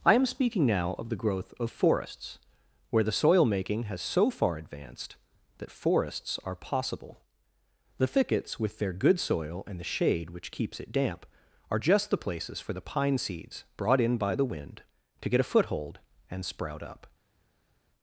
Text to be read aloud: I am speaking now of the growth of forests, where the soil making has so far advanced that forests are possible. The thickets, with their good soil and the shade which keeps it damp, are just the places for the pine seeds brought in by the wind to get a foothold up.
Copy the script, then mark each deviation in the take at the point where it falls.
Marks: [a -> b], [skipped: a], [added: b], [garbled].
I am speaking now of the growth of forests, where the soil making has so far advanced that forests are possible. The thickets, with their good soil and the shade which keeps it damp, are just the places for the pine seeds brought in by the wind to get a foothold [added: and sprout] up.